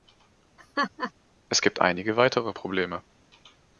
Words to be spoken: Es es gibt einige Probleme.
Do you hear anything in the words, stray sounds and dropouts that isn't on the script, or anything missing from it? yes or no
yes